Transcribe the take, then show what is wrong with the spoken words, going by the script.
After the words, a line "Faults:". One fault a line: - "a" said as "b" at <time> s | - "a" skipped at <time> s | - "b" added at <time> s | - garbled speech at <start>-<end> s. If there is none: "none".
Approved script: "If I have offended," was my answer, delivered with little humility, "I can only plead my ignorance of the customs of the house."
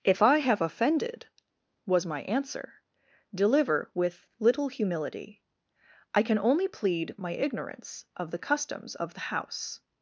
"If I have offended," was my answer, deliver with little humility, "I can only plead my ignorance of the customs of the house."
Faults:
- "delivered" said as "deliver" at 3.3 s